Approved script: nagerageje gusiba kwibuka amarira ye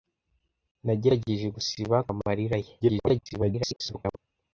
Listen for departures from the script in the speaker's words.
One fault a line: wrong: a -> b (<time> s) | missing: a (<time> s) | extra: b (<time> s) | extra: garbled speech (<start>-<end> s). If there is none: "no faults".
missing: kwibuka (2.0 s)
extra: garbled speech (2.8-4.2 s)